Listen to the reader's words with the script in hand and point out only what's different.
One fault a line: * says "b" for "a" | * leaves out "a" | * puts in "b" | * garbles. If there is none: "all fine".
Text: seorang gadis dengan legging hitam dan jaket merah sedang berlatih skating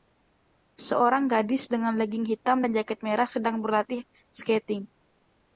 all fine